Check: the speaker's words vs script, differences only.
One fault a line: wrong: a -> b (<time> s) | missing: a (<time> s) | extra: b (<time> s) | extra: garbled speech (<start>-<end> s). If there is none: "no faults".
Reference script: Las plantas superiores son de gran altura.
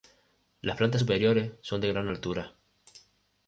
no faults